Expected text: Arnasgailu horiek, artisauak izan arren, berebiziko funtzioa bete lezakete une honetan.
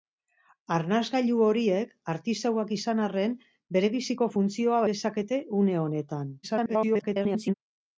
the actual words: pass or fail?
fail